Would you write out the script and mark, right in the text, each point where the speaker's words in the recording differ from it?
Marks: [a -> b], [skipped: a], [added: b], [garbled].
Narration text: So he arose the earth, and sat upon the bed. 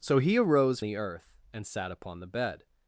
So he arose the earth, and sat upon the bed.